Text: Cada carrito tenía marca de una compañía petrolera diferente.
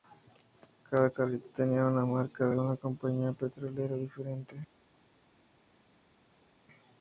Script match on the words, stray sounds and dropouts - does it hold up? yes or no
no